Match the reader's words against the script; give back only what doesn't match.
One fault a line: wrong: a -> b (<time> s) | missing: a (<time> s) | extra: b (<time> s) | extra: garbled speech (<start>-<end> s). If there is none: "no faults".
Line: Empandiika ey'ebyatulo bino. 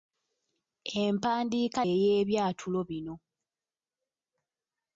no faults